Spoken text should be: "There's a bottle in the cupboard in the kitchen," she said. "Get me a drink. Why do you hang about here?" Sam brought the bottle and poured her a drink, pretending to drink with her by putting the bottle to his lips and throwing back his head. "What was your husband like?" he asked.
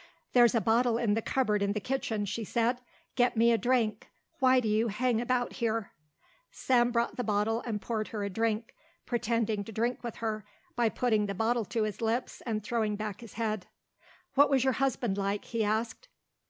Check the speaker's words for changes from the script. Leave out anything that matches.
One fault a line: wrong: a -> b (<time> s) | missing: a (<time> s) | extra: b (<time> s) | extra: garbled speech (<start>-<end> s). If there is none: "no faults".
no faults